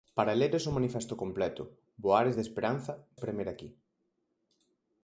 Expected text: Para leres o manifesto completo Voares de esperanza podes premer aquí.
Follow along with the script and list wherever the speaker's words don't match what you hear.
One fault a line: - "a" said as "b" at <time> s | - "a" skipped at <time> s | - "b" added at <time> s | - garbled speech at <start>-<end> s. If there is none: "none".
- "podes" skipped at 2.9 s